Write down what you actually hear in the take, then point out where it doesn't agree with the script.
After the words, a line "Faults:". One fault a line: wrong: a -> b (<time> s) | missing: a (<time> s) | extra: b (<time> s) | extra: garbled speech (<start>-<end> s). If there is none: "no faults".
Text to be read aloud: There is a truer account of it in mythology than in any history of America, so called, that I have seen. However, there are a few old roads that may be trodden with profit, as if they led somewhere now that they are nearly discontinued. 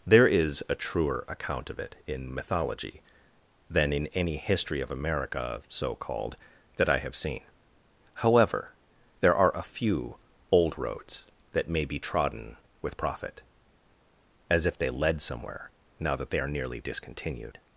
There is a truer account of it in mythology than in any history of America, so called, that I have seen. However, there are a few old roads that may be trodden with profit, as if they led somewhere now that they are nearly discontinued.
Faults:
no faults